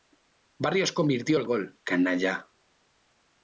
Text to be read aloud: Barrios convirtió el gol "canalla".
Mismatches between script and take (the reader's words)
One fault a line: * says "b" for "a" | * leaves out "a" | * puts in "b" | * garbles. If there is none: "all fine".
all fine